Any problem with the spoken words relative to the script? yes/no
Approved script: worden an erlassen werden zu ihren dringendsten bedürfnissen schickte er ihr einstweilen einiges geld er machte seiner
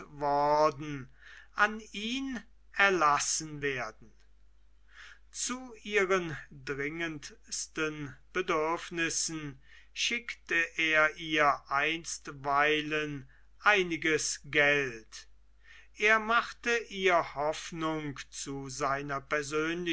yes